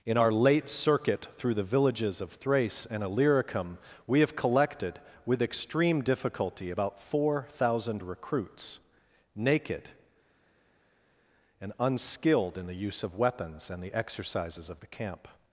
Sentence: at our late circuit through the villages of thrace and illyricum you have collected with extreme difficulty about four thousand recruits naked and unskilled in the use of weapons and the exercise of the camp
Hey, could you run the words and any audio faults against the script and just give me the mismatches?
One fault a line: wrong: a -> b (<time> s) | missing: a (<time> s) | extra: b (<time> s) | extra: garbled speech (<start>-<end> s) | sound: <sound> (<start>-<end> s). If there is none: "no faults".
wrong: at -> in (0.0 s)
wrong: you -> we (4.1 s)
wrong: exercise -> exercises (13.9 s)